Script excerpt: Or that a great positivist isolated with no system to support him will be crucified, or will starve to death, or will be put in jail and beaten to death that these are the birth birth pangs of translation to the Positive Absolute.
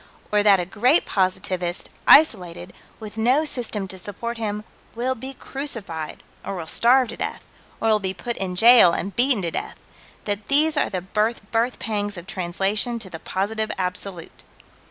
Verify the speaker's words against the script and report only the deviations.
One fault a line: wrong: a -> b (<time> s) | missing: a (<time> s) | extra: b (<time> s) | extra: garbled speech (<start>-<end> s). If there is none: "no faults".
no faults